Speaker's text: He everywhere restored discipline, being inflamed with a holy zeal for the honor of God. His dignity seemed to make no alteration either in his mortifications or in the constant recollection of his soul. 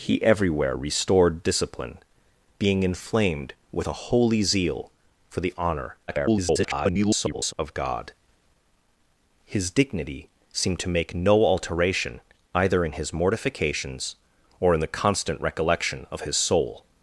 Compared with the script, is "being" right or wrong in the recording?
right